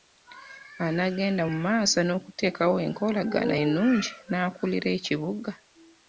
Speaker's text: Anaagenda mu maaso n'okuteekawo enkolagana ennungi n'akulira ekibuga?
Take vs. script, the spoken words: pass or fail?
pass